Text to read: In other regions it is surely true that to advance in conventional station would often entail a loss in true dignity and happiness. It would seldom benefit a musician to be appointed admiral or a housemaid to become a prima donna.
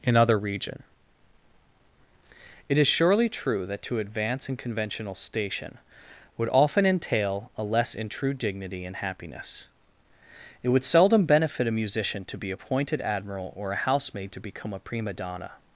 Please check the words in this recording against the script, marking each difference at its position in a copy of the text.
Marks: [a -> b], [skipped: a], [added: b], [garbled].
In other [regions -> region] it is surely true that to advance in conventional station would often entail a [loss -> less] in true dignity and happiness. It would seldom benefit a musician to be appointed admiral or a housemaid to become a prima donna.